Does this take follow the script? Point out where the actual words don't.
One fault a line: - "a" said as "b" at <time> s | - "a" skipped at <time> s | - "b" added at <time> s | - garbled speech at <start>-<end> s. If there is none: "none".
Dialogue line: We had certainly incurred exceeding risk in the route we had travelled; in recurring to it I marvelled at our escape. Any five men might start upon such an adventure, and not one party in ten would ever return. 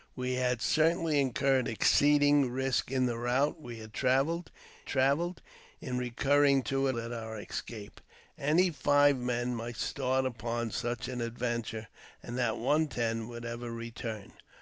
- "travelled" added at 4.9 s
- "I marvelled" skipped at 7.0 s
- "party in" skipped at 12.9 s